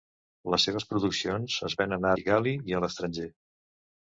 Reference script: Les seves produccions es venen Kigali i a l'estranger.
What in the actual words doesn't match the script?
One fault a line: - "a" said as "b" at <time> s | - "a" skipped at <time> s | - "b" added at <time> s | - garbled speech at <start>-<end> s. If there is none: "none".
none